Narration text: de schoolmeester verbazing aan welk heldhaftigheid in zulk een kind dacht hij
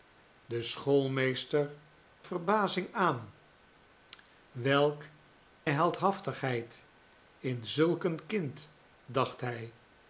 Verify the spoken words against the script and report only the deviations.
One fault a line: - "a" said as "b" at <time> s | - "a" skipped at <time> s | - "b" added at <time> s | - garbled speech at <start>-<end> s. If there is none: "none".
none